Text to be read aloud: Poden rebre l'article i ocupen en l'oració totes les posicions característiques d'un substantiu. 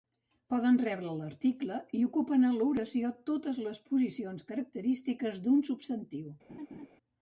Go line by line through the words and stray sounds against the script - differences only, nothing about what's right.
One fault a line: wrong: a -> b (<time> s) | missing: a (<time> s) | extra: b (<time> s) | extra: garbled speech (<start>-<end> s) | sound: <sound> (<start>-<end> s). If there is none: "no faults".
sound: laugh (6.5-6.9 s)